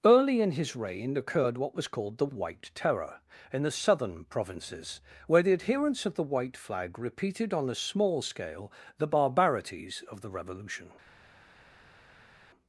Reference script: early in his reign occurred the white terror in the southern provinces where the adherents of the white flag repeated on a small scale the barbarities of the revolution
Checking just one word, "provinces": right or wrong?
right